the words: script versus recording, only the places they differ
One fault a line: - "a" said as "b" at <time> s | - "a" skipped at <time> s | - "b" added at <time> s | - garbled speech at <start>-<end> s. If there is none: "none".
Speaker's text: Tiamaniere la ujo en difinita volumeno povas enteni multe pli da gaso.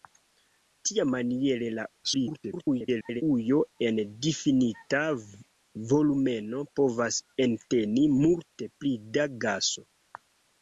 - garbled speech at 2.0-3.2 s